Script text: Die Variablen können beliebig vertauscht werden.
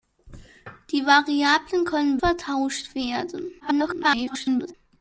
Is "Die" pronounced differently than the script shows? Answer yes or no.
no